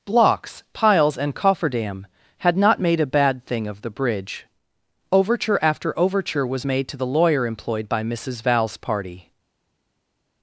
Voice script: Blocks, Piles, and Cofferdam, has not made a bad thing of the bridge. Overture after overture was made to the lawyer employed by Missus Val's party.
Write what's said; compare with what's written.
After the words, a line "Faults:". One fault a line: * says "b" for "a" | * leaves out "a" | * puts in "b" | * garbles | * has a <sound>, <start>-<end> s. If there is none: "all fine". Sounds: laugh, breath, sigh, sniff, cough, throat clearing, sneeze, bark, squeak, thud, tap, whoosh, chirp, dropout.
Blocks, Piles, and Cofferdam, had not made a bad thing of the bridge. Overture after overture was made to the lawyer employed by Missus Val's party.
Faults:
* says "had" for "has"